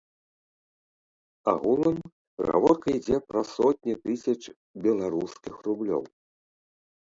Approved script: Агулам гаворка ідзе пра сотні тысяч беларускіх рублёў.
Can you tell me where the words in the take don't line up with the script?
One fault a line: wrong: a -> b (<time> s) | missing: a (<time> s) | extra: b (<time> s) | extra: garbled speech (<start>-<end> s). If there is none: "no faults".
no faults